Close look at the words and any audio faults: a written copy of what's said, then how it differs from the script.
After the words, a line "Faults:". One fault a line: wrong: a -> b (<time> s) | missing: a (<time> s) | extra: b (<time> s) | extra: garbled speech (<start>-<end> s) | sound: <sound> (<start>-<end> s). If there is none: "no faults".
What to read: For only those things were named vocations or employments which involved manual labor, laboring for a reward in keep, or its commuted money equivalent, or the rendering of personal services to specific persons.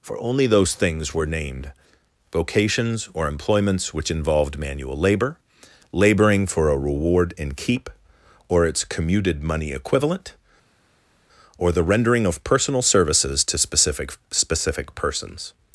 For only those things were named vocations or employments which involved manual labor, laboring for a reward in keep, or its commuted money equivalent, or the rendering of personal services to specific specific persons.
Faults:
extra: specific (14.3 s)